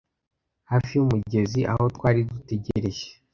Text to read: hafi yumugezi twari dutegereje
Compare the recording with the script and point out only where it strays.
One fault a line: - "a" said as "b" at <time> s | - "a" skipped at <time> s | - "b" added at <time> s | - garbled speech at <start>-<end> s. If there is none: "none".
- "aho" added at 1.7 s